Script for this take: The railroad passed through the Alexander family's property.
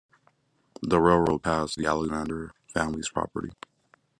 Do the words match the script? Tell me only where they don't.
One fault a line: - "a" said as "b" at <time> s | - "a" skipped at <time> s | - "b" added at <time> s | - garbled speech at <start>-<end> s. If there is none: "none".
- "through" skipped at 1.8 s